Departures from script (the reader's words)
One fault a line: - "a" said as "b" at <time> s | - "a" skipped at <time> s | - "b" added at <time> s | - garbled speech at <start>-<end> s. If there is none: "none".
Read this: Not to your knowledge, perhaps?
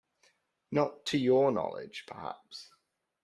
none